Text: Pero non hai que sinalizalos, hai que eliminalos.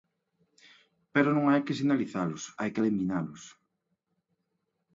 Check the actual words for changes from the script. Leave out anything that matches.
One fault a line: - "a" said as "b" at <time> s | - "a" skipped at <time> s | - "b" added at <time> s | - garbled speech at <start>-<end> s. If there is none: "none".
none